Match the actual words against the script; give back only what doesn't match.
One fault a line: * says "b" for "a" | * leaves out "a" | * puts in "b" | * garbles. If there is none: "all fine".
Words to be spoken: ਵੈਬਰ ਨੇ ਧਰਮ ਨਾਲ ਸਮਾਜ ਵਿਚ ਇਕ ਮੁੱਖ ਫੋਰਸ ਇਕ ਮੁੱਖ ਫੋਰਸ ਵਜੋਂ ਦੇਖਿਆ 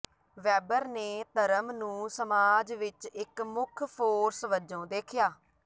* says "ਨੂੰ" for "ਨਾਲ"
* leaves out "ਇਕ ਮੁੱਖ ਫੋਰਸ"